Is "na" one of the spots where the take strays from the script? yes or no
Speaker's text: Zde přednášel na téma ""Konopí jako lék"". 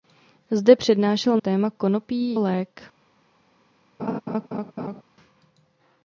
yes